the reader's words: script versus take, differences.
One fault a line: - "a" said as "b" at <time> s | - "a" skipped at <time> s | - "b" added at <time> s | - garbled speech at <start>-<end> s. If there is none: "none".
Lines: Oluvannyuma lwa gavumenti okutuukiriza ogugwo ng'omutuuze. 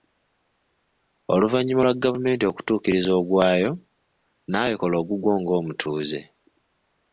- "ogwayo naawe kola" added at 3.2 s